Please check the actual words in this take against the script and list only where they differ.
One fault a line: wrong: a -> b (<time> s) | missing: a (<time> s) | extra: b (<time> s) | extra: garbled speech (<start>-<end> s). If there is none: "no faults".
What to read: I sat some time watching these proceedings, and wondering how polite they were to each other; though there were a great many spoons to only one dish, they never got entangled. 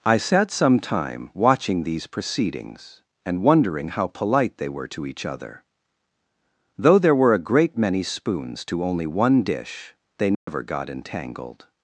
no faults